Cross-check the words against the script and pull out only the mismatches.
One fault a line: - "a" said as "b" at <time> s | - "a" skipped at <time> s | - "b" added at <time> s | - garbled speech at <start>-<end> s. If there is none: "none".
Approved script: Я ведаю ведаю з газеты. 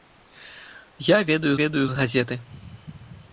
none